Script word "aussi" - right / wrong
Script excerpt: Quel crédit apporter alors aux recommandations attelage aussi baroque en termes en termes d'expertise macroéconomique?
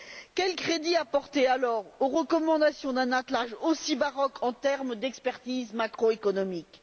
right